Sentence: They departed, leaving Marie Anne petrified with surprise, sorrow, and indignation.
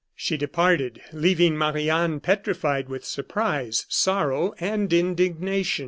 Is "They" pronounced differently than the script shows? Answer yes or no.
yes